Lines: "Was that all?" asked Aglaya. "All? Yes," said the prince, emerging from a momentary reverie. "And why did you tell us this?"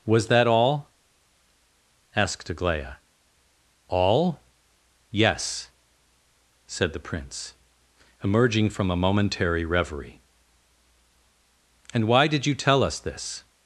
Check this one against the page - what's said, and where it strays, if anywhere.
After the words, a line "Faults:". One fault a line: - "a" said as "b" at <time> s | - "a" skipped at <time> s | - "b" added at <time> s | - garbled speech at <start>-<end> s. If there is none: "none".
"Was that all?" asked Aglaya. "All? Yes," said the prince, emerging from a momentary reverie. "And why did you tell us this?"
Faults:
none